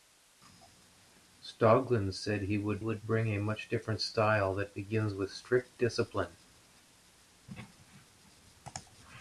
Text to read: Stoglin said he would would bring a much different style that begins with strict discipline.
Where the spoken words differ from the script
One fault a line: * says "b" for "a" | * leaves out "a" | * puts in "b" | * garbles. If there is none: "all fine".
all fine